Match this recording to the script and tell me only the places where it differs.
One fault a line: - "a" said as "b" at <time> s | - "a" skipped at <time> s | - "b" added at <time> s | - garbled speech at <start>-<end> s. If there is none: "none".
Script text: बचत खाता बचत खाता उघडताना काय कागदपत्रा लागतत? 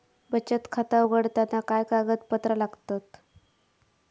- "बचत खाता" skipped at 1.0 s